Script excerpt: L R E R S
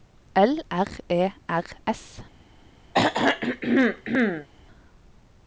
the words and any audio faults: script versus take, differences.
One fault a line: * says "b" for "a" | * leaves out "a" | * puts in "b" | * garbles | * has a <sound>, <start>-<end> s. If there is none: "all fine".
* has a throat clearing, 2.9-4.5 s